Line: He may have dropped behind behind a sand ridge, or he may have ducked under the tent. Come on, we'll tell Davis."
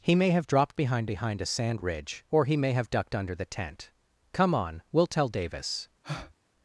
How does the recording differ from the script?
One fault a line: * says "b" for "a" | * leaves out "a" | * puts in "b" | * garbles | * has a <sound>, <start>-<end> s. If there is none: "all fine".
* has a breath, 6.0-6.3 s